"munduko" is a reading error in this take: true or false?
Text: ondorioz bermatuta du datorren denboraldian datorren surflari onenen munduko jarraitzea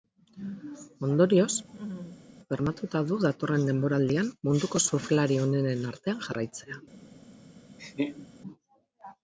true